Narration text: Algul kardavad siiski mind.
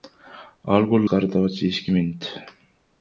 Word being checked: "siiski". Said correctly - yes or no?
yes